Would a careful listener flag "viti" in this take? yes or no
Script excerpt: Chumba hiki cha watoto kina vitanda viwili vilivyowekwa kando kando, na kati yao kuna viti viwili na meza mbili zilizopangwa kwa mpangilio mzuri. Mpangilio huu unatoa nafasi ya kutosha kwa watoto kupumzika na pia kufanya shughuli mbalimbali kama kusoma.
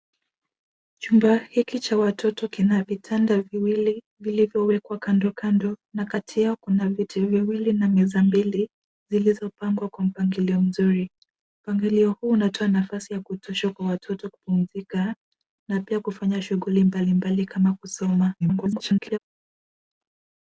no